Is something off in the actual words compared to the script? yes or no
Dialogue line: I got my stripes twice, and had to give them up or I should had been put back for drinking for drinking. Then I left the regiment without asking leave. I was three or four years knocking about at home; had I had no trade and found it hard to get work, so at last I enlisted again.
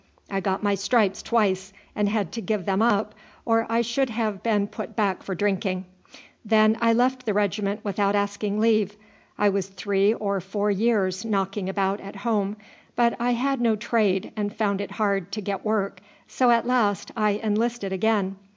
yes